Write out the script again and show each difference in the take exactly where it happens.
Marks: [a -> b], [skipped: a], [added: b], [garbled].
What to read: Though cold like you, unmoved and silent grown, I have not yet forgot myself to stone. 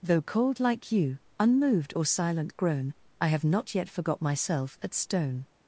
Though cold like you, unmoved [and -> or] silent grown, I have not yet forgot myself [to -> at] stone.